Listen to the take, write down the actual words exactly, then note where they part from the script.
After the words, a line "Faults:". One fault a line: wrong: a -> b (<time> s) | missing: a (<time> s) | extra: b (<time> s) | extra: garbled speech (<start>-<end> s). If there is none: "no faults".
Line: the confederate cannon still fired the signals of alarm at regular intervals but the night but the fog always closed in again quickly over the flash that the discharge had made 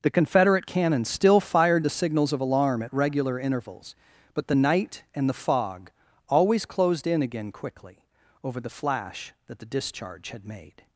the confederate cannon still fired the signals of alarm at regular intervals but the night and the fog always closed in again quickly over the flash that the discharge had made
Faults:
wrong: but -> and (5.1 s)